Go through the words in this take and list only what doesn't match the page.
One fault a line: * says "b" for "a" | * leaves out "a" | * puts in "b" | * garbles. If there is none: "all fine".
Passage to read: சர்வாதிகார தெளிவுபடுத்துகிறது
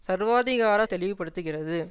all fine